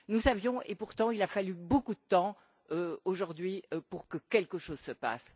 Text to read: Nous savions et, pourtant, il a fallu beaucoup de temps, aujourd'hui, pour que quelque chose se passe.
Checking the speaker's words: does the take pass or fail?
pass